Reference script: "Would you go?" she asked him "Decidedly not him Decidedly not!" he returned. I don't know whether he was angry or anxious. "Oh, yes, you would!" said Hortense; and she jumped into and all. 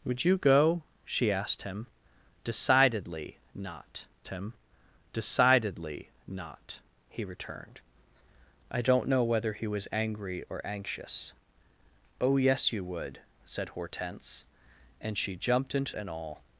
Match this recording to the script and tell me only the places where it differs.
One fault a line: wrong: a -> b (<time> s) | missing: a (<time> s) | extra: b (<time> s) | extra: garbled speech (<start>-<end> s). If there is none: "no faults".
no faults